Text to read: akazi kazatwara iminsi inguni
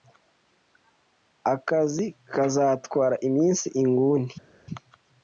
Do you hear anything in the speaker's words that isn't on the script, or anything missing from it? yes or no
no